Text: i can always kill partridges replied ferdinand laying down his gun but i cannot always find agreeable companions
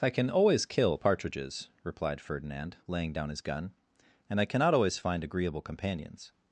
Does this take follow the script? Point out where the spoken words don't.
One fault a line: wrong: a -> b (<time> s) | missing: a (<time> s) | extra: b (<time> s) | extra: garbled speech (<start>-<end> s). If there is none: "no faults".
wrong: but -> and (4.3 s)